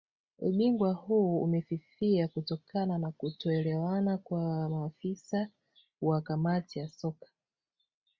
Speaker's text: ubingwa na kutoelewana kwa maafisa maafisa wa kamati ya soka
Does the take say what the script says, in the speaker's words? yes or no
no